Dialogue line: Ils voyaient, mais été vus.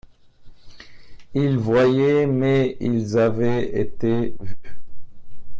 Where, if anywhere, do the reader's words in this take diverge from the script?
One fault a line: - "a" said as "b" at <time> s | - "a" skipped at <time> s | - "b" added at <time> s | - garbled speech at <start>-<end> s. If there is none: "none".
- "ils avaient" added at 2.8 s